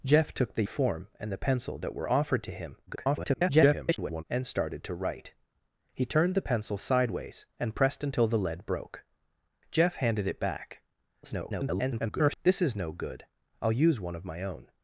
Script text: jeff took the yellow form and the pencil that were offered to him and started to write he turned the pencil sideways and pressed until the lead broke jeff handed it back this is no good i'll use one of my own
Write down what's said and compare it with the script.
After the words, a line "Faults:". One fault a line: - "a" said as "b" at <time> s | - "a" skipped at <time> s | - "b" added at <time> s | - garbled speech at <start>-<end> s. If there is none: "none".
jeff took the form and the pencil that were offered to him [garbled] and started to write he turned the pencil sideways and pressed until the lead broke jeff handed it back [garbled] this is no good i'll use one of my own
Faults:
- "yellow" skipped at 0.6 s
- garbled speech at 2.9-4.2 s
- garbled speech at 11.2-12.4 s